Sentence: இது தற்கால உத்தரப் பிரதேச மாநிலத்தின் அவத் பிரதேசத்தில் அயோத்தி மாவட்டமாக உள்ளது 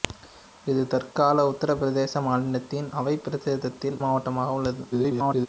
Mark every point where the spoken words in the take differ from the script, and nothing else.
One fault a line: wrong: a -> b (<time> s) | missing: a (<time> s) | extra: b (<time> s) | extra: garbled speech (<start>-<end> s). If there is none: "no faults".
missing: அயோத்தி (4.0 s)
extra: garbled speech (4.9-5.5 s)